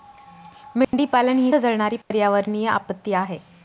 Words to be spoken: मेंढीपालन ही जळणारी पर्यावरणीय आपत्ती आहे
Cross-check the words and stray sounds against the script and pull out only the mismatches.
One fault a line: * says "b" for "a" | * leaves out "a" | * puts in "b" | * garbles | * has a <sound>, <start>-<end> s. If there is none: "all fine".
* has a dropout, 0.8-0.9 s
* has a dropout, 2.0-2.1 s